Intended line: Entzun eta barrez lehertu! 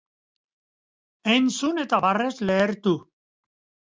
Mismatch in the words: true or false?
false